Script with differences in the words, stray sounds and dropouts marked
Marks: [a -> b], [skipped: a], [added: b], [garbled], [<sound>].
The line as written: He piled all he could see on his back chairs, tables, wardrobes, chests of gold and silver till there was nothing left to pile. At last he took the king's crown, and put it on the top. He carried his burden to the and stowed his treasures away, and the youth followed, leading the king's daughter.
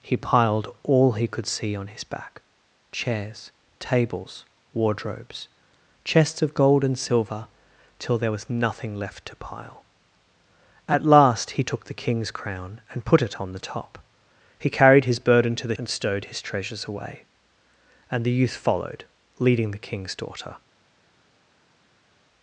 He piled all he could see on his back chairs, tables, wardrobes, chests of gold and silver till there was nothing left to pile. At last he took the king's crown, and put it on the top. He carried his burden to the and stowed his treasures away, and the youth followed, leading the king's daughter.